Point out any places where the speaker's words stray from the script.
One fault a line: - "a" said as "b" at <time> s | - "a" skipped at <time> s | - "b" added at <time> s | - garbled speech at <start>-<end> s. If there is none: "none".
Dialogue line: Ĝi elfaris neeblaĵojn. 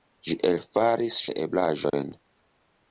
none